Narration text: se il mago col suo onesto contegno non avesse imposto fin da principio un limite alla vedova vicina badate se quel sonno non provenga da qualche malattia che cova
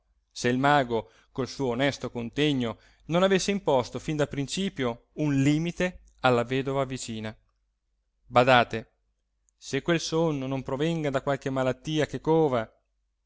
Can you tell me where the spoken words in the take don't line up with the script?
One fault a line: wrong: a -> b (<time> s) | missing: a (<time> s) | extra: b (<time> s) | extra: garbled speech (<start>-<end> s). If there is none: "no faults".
no faults